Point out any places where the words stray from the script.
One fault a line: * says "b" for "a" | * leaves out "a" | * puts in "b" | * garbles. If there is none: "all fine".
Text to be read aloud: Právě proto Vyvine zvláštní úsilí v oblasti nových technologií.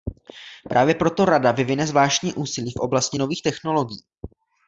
* puts in "Rada"